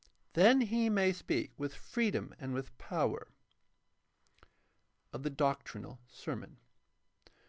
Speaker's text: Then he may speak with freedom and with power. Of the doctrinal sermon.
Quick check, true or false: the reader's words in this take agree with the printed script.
true